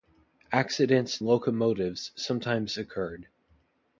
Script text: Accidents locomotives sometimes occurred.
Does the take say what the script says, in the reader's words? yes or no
yes